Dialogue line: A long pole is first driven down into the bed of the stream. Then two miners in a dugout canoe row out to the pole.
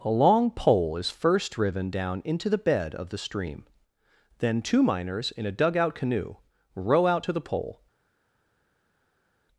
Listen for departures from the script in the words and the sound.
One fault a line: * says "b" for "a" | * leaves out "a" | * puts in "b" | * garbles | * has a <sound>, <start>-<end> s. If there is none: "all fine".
all fine